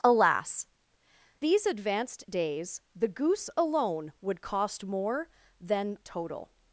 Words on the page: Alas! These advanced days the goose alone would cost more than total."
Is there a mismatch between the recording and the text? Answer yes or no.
no